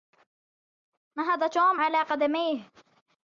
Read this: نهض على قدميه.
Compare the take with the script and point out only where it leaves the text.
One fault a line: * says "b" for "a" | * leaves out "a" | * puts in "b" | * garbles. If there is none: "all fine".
* puts in "توم"